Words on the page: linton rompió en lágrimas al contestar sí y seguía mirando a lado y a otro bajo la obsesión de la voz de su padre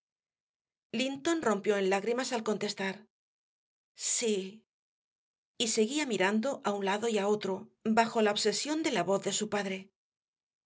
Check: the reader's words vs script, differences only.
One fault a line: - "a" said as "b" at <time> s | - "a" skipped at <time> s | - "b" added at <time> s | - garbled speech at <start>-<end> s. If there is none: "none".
- "un" added at 6.7 s